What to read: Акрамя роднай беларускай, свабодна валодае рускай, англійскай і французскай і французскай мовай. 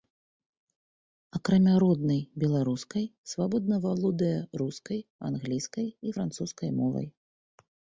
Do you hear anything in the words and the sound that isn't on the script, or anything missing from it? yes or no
yes